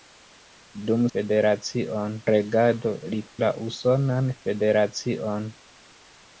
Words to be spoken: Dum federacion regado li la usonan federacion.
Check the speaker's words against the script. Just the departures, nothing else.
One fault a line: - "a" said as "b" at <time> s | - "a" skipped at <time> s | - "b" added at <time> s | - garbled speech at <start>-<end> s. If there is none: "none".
none